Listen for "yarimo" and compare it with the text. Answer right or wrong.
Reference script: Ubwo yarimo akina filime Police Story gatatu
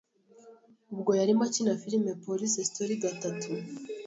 right